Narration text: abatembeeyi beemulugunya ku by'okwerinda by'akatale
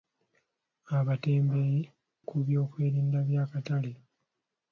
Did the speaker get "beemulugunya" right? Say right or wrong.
wrong